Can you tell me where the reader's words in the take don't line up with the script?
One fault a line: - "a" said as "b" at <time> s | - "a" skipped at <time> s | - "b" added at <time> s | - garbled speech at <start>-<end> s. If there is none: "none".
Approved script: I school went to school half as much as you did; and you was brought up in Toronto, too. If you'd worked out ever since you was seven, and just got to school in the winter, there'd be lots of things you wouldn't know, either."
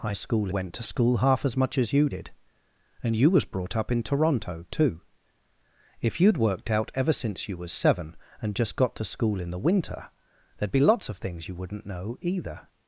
none